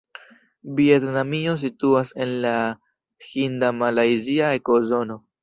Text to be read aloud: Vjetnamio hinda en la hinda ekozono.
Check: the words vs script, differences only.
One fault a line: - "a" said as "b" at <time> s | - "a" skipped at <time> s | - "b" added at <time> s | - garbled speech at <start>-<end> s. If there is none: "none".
- "hinda" said as "situas" at 1.6 s
- "malajzia" added at 3.8 s